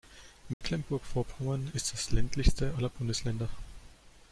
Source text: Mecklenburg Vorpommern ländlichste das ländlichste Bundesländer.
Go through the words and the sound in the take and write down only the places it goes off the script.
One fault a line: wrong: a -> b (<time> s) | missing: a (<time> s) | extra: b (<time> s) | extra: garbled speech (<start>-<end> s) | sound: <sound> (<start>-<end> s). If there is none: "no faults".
sound: dropout (0.5-0.6 s)
wrong: ländlichste -> ist (1.7 s)
extra: aller (2.8 s)